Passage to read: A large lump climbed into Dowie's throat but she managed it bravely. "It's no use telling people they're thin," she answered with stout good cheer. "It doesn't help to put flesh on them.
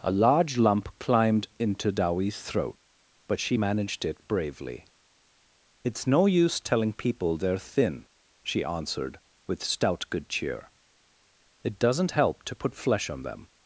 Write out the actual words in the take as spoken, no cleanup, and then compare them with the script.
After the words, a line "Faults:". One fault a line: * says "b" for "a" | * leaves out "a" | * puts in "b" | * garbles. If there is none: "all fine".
A large lump climbed into Dowie's throat but she managed it bravely. "It's no use telling people they're thin," she answered with stout good cheer. "It doesn't help to put flesh on them.
Faults:
all fine